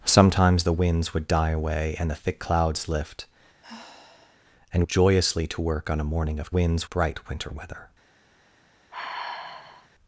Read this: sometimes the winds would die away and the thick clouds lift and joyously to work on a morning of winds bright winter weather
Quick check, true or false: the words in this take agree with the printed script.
true